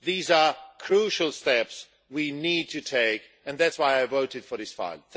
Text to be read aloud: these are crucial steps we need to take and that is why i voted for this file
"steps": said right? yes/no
yes